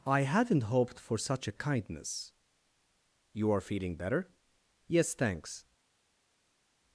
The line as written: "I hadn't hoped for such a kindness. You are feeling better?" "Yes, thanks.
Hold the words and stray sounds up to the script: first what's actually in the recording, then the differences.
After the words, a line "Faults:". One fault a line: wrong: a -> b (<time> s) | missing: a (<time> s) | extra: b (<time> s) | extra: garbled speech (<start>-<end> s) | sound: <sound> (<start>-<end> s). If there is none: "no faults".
"I hadn't hoped for such a kindness. You are feeling better?" "Yes, thanks.
Faults:
no faults